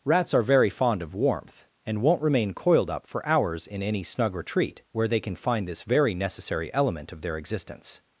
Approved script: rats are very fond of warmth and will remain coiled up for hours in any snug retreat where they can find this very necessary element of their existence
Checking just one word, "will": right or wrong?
wrong